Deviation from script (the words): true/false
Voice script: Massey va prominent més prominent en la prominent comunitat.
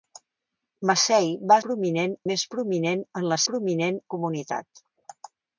false